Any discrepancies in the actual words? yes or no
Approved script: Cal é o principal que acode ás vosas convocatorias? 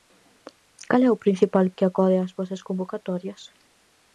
no